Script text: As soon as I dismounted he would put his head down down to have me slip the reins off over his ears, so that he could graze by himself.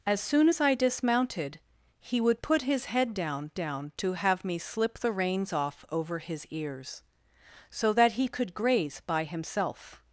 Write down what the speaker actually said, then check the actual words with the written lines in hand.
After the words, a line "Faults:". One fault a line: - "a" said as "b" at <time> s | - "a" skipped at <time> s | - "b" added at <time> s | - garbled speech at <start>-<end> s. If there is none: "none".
As soon as I dismounted he would put his head down down to have me slip the reins off over his ears, so that he could graze by himself.
Faults:
none